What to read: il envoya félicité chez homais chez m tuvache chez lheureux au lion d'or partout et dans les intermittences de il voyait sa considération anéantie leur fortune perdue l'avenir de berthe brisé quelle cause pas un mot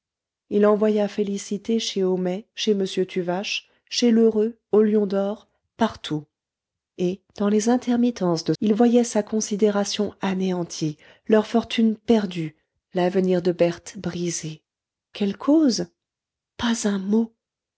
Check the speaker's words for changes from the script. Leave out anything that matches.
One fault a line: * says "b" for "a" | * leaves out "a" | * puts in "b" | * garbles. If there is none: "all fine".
all fine